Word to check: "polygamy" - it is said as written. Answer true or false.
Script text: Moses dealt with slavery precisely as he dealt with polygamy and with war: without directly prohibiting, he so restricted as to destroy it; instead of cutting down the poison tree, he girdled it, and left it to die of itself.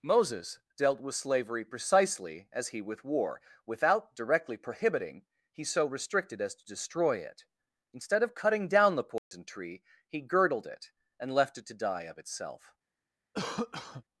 false